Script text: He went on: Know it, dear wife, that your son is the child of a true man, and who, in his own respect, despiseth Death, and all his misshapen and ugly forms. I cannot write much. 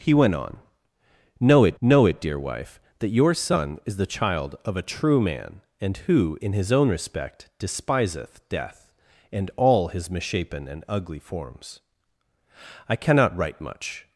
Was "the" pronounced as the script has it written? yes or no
yes